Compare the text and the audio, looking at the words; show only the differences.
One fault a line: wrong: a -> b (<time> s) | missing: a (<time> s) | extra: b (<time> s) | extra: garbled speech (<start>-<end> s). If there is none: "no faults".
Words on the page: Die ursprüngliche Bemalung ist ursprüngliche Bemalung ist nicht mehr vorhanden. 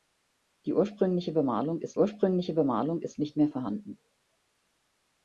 no faults